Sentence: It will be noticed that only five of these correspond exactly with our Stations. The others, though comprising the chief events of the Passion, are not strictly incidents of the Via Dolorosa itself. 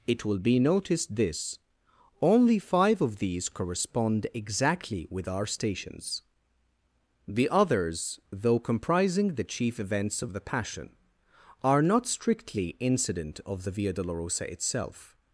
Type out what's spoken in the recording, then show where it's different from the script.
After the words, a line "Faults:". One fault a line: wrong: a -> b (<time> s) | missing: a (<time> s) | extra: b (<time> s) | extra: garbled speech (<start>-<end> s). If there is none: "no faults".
It will be noticed this only five of these correspond exactly with our Stations. The others, though comprising the chief events of the Passion, are not strictly incident of the Via Dolorosa itself.
Faults:
wrong: that -> this (1.1 s)
wrong: incidents -> incident (12.8 s)